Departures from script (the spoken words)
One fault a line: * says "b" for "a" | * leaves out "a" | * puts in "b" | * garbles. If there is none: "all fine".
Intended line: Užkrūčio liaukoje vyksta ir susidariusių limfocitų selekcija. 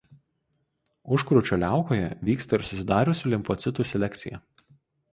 all fine